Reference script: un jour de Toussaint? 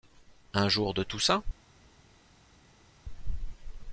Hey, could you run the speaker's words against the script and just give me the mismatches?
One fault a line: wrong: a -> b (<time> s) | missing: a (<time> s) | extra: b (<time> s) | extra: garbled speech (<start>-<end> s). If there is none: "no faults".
no faults